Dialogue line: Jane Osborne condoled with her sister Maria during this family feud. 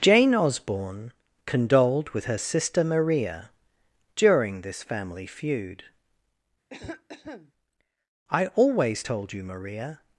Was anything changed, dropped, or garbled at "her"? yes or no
no